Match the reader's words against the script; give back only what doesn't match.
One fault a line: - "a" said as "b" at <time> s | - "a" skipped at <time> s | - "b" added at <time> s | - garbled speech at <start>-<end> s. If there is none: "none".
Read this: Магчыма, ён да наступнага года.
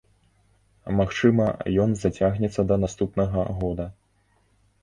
- "зацягнецца" added at 2.0 s